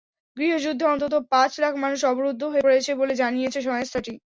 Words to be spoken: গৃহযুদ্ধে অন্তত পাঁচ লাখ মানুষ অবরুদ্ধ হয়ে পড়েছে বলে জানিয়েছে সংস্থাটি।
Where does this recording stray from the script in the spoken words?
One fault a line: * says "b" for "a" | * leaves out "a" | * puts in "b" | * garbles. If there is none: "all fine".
all fine